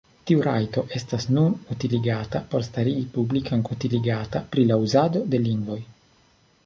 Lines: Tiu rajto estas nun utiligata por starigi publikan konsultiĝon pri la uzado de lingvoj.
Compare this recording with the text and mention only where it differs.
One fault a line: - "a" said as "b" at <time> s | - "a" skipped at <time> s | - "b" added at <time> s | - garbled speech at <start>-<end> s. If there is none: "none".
- "konsultiĝon" said as "utiligata" at 3.8 s